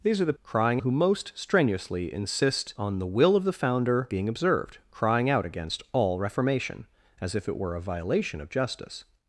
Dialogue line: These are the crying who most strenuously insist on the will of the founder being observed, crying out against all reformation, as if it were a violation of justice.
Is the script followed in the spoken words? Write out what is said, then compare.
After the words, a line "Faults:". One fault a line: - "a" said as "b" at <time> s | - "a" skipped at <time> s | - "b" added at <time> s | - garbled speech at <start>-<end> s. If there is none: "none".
These are the crying who most strenuously insist on the will of the founder being observed, crying out against all reformation, as if it were a violation of justice.
Faults:
none